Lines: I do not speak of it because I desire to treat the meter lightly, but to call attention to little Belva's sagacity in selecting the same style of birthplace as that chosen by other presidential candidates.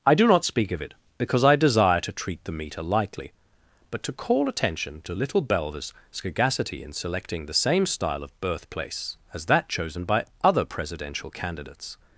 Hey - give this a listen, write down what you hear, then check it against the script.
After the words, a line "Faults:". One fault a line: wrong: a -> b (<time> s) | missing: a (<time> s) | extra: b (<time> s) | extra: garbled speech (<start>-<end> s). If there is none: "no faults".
I do not speak of it because I desire to treat the meter lightly, but to call attention to little Belva's sagacity in selecting the same style of birthplace as that chosen by other presidential candidates.
Faults:
no faults